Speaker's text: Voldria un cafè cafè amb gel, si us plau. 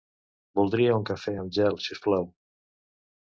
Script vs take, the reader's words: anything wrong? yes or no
yes